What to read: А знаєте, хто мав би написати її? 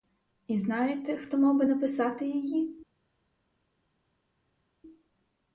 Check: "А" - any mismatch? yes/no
yes